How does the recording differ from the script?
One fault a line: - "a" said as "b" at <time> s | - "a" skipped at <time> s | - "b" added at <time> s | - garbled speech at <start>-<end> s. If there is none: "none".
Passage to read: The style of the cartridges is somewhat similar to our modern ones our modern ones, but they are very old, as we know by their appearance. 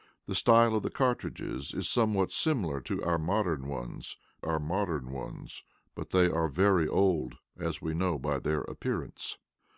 none